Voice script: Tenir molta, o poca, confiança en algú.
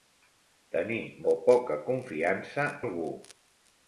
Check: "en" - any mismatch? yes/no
yes